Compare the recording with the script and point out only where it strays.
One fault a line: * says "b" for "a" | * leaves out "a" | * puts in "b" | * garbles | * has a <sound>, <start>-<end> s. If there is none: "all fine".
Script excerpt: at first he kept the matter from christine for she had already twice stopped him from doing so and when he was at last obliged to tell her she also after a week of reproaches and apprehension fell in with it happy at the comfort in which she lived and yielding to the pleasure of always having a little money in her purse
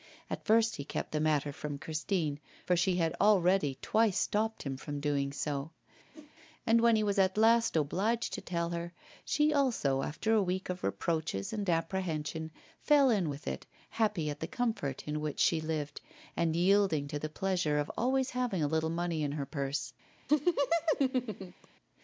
* has a whoosh, 6.1-6.3 s
* has a laugh, 20.3-21.7 s